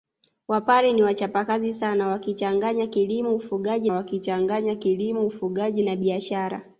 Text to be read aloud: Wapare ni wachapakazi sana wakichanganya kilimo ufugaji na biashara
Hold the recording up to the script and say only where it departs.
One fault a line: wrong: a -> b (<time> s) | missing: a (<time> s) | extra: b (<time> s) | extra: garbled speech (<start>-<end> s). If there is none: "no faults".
extra: wakichanganya kilimo ufugaji (3.9 s)